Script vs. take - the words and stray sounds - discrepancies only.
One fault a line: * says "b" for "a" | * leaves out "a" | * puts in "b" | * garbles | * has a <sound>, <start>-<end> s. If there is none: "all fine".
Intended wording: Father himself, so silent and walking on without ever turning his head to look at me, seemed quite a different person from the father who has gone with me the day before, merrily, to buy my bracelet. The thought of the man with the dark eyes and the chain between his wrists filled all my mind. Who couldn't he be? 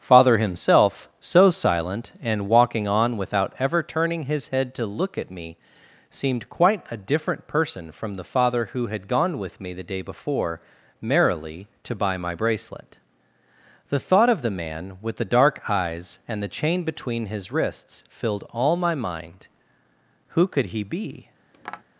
* says "had" for "has"
* says "could" for "couldn't"
* has a tap, 21.5-21.8 s